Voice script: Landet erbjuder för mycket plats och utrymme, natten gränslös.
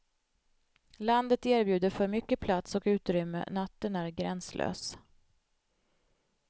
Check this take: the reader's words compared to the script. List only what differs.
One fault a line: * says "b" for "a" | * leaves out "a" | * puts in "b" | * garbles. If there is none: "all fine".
* puts in "är"